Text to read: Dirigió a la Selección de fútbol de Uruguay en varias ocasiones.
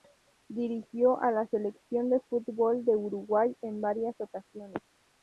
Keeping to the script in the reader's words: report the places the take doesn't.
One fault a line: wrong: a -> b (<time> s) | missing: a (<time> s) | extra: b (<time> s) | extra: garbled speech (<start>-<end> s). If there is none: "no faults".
no faults